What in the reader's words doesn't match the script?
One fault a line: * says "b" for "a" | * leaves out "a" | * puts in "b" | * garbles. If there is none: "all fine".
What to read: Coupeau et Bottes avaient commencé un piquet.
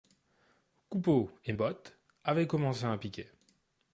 all fine